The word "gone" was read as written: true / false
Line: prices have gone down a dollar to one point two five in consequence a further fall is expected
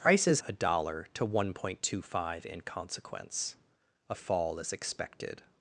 false